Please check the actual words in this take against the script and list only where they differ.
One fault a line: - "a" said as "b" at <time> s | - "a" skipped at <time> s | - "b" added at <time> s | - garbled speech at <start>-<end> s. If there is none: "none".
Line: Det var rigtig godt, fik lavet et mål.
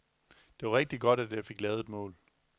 - "at jeg" added at 1.2 s